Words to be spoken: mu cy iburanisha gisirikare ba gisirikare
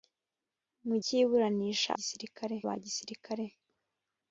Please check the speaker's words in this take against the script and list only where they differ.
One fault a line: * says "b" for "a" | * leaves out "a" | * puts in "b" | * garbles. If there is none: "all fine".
all fine